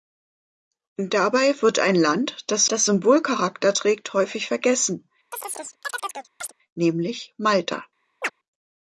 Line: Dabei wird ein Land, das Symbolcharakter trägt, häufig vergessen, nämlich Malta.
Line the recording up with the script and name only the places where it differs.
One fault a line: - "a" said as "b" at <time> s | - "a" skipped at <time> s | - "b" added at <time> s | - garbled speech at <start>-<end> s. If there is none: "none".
- "das" added at 2.7 s